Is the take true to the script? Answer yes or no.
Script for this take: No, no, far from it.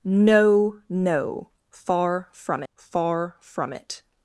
no